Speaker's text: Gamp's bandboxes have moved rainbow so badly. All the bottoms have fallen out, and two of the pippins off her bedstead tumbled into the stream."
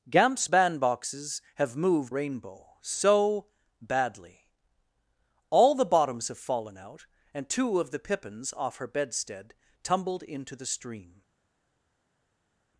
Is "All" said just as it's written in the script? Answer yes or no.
yes